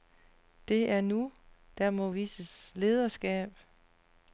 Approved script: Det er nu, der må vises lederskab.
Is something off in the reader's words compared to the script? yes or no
no